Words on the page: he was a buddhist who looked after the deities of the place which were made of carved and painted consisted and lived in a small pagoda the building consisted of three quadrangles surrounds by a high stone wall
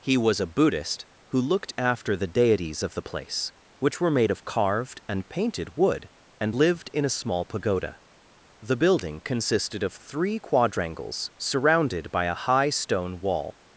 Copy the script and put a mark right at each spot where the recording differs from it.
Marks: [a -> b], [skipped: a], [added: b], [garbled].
he was a buddhist who looked after the deities of the place which were made of carved and painted [consisted -> wood] and lived in a small pagoda the building consisted of three quadrangles [surrounds -> surrounded] by a high stone wall